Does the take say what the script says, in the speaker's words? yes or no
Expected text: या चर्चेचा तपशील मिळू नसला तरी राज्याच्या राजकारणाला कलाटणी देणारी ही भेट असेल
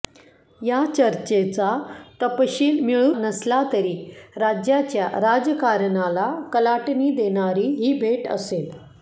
yes